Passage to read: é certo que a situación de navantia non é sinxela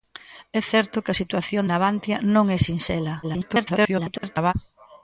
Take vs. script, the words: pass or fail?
fail